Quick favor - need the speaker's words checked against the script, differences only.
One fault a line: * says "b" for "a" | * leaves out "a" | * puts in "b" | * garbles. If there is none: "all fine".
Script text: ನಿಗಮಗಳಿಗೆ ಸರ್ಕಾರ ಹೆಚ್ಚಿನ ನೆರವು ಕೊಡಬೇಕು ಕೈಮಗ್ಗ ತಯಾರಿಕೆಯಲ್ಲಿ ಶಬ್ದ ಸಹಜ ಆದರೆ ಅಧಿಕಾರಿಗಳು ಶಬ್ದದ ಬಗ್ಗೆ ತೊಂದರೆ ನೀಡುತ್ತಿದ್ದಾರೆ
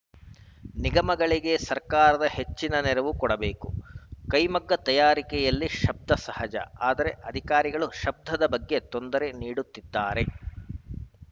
all fine